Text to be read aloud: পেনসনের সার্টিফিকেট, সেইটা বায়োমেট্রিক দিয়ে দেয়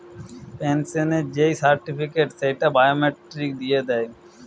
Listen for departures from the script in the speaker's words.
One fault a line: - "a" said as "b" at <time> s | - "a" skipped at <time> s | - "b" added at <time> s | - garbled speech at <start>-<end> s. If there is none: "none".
- "যেই" added at 1.4 s